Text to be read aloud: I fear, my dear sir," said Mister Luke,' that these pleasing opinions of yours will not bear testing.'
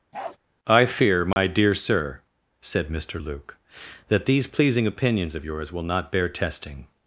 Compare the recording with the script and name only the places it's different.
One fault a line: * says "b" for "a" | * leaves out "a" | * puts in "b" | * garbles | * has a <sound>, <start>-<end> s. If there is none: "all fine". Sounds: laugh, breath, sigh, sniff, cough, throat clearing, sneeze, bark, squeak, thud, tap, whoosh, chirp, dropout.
* has a bark, 0.1-0.4 s
* has a dropout, 1.3-1.4 s